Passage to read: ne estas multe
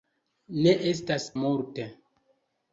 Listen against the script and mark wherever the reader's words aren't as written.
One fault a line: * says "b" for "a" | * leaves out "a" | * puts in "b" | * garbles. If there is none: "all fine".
all fine